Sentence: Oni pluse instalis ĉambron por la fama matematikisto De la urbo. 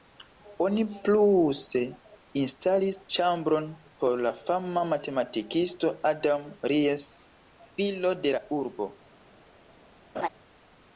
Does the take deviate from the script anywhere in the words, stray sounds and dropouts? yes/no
yes